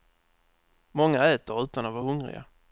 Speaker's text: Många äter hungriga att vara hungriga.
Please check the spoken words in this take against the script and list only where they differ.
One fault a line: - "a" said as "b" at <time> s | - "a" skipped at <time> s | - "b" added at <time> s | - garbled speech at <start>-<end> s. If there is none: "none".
- "hungriga" said as "utan" at 1.6 s